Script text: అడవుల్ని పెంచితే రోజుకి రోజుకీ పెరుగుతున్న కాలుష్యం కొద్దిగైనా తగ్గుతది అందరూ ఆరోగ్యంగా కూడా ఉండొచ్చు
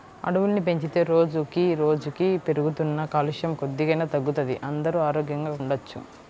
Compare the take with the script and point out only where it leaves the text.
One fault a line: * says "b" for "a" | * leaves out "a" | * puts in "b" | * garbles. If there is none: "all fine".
* leaves out "కూడా"